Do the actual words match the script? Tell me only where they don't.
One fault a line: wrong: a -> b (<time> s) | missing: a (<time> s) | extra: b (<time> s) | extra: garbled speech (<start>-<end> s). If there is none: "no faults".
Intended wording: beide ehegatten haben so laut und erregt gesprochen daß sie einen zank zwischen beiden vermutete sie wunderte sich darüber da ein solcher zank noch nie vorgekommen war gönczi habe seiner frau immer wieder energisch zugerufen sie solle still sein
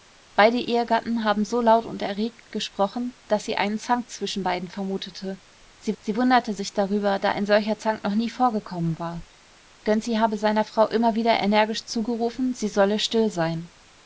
extra: sie (6.0 s)